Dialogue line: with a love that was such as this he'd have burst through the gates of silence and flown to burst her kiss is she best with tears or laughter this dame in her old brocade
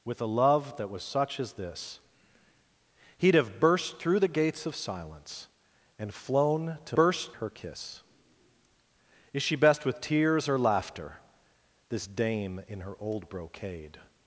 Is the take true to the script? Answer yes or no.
yes